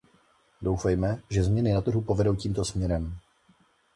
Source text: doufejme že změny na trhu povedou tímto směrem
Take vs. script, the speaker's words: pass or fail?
pass